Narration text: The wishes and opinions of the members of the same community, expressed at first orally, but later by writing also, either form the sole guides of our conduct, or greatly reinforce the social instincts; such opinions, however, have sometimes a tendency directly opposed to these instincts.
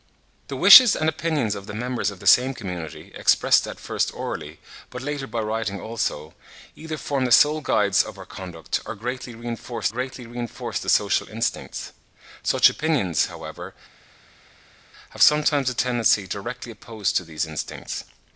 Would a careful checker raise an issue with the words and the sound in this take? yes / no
yes